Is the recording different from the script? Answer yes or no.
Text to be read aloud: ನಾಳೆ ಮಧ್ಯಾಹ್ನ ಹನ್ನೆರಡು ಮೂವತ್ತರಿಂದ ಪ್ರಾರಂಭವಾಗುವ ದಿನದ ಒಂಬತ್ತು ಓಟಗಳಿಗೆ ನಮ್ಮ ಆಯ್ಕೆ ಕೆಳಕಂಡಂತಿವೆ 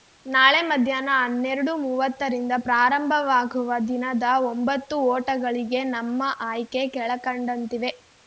no